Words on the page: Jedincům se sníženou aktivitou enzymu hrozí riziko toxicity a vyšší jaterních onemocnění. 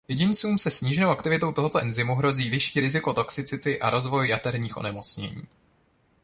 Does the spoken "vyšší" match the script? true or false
false